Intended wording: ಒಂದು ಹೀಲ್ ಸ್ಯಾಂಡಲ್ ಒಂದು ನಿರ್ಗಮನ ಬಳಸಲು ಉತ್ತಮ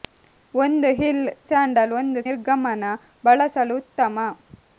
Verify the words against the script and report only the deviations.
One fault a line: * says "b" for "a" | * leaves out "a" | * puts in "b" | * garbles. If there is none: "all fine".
all fine